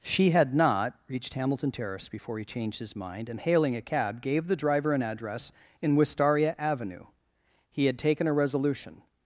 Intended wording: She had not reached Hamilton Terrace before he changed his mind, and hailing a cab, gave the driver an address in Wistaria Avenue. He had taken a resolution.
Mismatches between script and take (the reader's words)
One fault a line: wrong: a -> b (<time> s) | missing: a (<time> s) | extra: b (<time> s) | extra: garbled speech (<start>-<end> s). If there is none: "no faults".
no faults